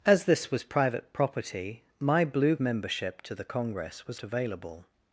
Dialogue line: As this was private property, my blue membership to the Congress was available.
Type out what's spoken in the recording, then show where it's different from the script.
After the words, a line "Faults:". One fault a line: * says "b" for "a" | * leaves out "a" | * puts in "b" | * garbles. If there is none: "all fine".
As this was private property, my blue membership to the Congress was available.
Faults:
all fine